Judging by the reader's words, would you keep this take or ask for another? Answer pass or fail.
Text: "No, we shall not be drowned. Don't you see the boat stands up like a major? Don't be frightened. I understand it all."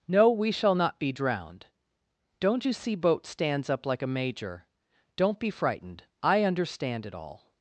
fail